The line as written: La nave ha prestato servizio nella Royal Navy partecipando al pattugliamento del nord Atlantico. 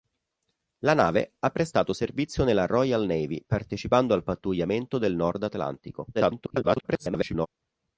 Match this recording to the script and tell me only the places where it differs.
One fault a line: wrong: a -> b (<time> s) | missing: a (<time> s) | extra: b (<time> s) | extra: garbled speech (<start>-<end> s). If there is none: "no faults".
extra: garbled speech (6.1-7.5 s)